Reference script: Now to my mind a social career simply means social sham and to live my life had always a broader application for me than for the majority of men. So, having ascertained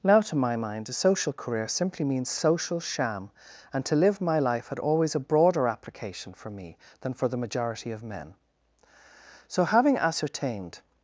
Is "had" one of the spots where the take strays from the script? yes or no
no